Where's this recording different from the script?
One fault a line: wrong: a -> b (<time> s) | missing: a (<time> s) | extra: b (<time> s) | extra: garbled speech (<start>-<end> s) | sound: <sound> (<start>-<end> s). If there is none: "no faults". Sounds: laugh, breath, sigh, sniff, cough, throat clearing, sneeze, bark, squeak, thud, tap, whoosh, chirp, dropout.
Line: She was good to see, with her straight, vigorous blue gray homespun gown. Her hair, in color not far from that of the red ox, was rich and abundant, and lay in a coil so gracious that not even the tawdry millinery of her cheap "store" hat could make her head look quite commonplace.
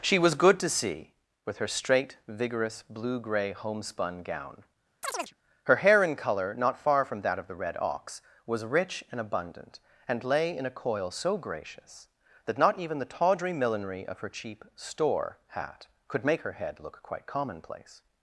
sound: chirp (5.0-5.3 s)